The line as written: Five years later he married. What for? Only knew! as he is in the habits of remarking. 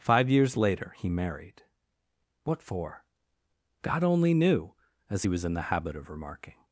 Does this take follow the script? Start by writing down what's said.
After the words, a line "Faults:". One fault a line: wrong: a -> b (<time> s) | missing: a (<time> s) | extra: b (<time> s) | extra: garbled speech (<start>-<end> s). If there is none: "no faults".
Five years later he married. What for? God only knew! as he was in the habit of remarking.
Faults:
extra: God (3.8 s)
wrong: is -> was (5.3 s)
wrong: habits -> habit (5.7 s)